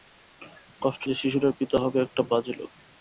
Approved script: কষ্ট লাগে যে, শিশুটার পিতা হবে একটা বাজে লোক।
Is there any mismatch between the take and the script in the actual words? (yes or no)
yes